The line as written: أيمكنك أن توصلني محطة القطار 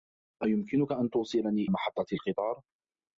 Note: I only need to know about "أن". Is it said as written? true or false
true